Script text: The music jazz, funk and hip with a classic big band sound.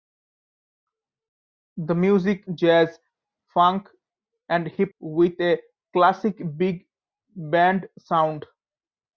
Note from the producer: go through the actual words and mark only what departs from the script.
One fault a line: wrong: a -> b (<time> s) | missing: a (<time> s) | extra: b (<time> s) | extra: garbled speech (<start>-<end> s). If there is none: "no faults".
no faults